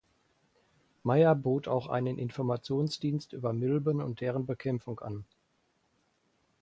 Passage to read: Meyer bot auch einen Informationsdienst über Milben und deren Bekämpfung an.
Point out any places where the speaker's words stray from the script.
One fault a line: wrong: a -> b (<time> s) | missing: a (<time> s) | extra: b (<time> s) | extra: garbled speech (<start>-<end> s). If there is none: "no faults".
no faults